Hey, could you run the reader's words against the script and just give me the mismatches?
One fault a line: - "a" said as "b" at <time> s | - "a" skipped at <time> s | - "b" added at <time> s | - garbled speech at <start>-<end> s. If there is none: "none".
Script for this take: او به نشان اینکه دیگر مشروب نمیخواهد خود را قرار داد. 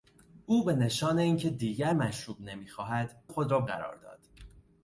none